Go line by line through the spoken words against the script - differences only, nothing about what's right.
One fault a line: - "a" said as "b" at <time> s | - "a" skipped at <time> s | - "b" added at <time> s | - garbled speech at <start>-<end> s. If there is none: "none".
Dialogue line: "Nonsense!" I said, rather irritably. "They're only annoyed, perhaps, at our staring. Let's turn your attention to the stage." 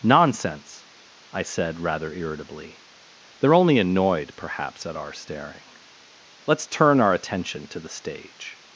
- "your" said as "our" at 7.0 s